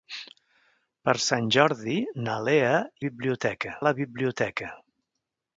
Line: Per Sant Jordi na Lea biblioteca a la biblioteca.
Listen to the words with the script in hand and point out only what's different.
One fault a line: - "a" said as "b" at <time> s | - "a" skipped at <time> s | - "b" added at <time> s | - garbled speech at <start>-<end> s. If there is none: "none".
none